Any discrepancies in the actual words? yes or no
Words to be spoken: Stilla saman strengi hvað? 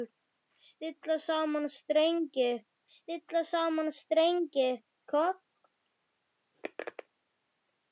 yes